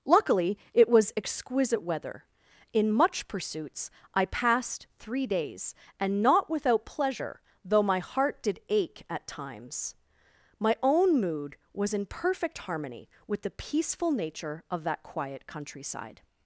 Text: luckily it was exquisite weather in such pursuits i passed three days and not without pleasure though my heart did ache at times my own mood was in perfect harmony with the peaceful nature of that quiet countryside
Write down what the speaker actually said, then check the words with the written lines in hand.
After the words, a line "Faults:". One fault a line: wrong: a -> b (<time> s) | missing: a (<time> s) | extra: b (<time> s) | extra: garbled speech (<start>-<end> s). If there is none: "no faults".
luckily it was exquisite weather in much pursuits i passed three days and not without pleasure though my heart did ache at times my own mood was in perfect harmony with the peaceful nature of that quiet countryside
Faults:
wrong: such -> much (2.9 s)